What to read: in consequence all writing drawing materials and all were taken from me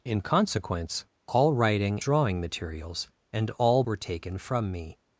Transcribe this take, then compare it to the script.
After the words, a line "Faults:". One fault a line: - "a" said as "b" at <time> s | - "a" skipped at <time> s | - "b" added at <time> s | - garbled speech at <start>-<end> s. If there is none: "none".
in consequence all writing drawing materials and all were taken from me
Faults:
none